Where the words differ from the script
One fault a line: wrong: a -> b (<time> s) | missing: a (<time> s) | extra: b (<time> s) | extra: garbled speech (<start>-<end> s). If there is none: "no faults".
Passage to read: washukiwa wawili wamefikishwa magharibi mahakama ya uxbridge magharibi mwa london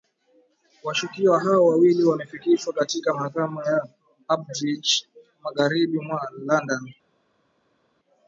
extra: hao (1.4 s)
wrong: magharibi -> katika (2.7 s)